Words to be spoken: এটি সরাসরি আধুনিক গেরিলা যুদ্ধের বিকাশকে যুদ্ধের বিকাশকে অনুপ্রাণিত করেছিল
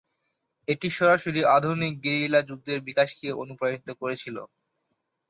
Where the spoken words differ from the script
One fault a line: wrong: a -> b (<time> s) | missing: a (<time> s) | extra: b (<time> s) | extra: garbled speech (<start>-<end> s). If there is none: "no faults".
missing: যুদ্ধের বিকাশকে (3.3 s)